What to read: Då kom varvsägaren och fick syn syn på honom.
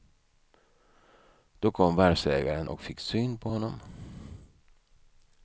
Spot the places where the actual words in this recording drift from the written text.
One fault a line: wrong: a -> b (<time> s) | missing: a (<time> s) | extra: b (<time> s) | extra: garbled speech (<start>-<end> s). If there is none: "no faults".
missing: syn (3.4 s)